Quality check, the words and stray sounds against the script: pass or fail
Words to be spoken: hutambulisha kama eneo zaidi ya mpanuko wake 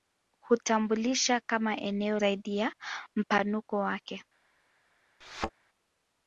fail